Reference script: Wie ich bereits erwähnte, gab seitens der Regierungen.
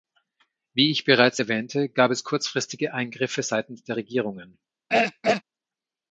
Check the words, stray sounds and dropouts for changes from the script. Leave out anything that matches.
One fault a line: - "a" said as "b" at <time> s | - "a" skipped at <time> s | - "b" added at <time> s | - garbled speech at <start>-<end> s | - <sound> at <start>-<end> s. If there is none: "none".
- "es kurzfristige Eingriffe" added at 2.1 s
- throat clearing at 4.9-5.4 s